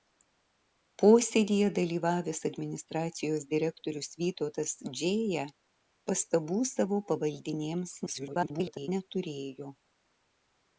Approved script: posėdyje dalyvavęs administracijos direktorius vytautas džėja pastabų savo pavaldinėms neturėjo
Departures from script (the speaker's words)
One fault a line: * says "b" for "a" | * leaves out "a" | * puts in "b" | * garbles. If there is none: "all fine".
* garbles